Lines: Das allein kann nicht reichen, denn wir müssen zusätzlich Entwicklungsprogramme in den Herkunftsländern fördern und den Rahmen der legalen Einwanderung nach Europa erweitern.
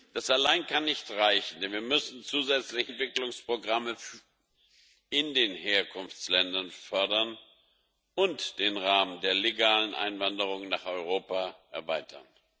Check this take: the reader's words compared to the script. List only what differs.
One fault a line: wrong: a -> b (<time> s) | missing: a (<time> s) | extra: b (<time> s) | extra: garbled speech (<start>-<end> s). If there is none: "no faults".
no faults